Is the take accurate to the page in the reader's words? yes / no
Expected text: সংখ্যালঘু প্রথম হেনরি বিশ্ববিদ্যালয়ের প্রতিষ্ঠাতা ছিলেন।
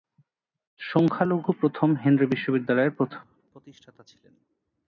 yes